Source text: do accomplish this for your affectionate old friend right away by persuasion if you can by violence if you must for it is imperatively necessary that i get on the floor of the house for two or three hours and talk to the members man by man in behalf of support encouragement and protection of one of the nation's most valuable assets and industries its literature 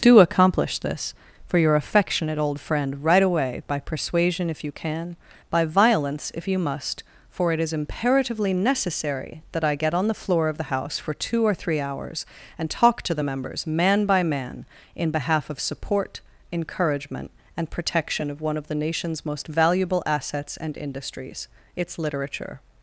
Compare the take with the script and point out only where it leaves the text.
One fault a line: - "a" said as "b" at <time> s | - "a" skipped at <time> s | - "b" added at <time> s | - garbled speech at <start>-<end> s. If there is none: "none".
none